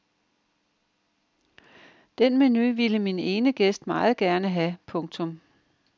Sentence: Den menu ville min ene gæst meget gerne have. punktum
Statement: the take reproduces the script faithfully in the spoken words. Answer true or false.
true